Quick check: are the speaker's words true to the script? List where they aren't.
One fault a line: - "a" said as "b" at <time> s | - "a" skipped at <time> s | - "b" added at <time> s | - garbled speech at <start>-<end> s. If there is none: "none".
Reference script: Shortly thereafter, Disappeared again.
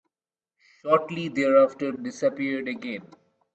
none